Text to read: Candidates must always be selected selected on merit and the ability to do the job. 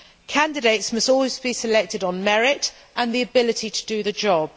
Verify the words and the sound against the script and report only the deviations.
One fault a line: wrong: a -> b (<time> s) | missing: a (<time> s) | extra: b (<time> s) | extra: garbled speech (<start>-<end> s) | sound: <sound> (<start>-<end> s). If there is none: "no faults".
missing: selected (2.0 s)